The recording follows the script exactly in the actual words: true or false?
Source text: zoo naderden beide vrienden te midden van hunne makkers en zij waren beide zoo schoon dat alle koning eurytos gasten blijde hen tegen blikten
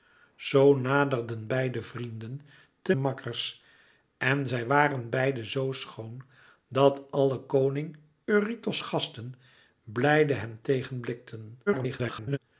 false